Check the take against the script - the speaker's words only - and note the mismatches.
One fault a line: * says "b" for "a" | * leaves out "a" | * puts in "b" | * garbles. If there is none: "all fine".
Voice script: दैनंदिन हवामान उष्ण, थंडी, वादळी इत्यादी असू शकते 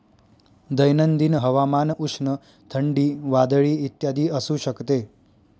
all fine